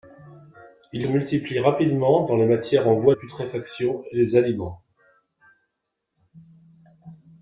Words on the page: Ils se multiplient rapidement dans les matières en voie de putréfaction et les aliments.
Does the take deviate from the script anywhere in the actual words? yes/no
yes